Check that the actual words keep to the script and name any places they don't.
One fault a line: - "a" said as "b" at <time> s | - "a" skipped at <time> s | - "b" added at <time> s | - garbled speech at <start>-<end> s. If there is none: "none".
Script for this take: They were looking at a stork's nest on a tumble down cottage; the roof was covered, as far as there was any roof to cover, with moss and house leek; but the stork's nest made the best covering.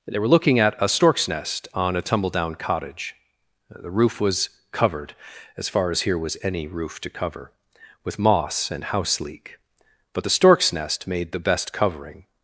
- "there" said as "here" at 6.0 s